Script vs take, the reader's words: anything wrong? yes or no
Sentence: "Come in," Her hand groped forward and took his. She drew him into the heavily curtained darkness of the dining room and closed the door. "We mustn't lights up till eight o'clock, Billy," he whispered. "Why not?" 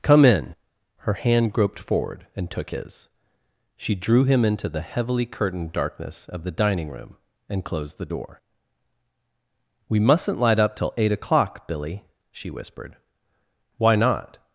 yes